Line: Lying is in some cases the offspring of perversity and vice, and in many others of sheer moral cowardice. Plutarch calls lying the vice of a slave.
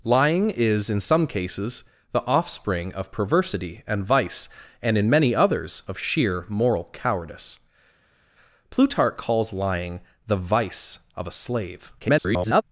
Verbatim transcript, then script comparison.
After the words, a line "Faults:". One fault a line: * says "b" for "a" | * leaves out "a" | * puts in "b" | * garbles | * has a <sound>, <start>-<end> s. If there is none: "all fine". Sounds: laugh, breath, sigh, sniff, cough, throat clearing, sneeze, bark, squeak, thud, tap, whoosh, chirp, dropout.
Lying is in some cases the offspring of perversity and vice, and in many others of sheer moral cowardice. Plutarch calls lying the vice of a slave. [garbled]
Faults:
* garbles